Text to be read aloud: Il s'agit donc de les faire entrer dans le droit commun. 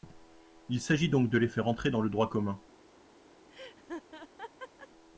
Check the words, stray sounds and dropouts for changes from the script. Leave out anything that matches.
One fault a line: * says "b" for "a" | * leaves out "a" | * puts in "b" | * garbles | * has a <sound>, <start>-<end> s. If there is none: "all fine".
* has a laugh, 3.5-4.9 s